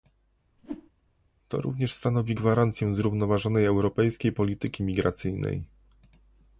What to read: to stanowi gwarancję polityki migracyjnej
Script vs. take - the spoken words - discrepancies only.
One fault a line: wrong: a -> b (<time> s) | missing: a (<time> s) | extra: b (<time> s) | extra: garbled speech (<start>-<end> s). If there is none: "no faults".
extra: również (1.6 s)
extra: zrównoważonej europejskiej (2.9 s)